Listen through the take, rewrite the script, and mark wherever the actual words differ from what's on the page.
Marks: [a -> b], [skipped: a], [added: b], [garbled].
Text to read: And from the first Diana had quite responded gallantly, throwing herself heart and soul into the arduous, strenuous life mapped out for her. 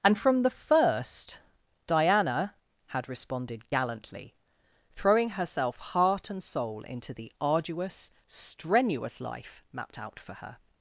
And from the first Diana had [skipped: quite] responded gallantly, throwing herself heart and soul into the arduous, strenuous life mapped out for her.